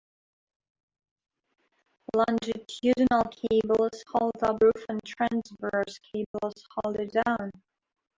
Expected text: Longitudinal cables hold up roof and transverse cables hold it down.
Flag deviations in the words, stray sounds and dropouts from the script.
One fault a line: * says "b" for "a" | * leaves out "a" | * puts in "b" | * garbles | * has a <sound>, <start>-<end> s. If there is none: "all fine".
* has a dropout, 6.3-6.3 s